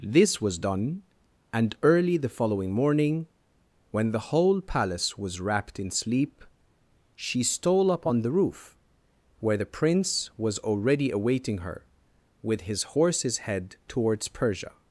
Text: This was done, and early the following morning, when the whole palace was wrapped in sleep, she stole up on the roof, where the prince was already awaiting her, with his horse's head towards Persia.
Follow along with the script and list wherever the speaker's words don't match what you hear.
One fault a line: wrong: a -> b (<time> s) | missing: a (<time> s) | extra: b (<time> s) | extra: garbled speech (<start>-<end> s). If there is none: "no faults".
no faults